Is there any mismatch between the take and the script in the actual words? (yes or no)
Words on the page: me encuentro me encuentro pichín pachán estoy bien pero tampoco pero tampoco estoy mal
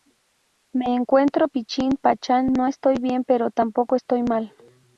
yes